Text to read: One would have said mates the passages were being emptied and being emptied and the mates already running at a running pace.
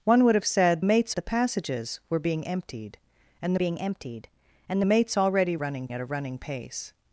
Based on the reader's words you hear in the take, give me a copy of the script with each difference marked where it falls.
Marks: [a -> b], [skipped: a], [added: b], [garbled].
One would have said mates the passages were being emptied and being emptied and the mates already running at a running pace.